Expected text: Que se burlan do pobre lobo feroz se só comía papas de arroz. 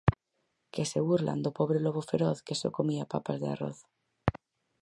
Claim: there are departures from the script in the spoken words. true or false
true